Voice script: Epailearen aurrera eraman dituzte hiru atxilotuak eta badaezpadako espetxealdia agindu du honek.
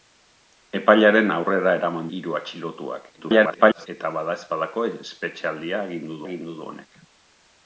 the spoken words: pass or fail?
fail